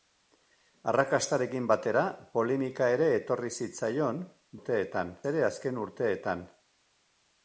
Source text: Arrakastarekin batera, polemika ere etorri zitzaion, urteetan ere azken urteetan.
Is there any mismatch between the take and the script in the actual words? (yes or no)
no